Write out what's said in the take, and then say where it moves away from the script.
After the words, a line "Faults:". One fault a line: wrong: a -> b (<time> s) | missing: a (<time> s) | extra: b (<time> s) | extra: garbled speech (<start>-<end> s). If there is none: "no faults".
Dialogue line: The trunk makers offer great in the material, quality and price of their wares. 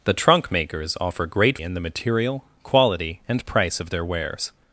The trunk makers offer great in the material, quality and price of their wares.
Faults:
no faults